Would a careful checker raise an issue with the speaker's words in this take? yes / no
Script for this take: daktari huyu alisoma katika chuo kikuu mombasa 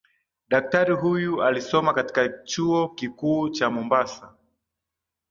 yes